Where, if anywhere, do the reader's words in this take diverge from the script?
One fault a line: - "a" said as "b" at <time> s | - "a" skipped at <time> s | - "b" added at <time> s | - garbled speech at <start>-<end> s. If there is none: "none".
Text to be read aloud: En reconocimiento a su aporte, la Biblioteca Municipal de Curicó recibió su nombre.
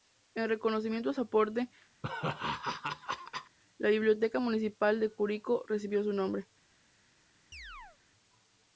none